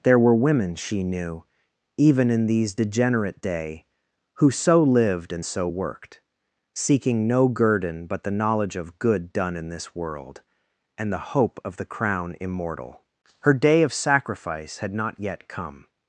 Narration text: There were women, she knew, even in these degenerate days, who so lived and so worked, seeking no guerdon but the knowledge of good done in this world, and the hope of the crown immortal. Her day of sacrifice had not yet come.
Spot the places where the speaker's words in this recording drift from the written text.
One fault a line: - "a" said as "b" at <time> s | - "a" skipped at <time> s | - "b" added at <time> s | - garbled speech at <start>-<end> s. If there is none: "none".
- "days" said as "day" at 3.4 s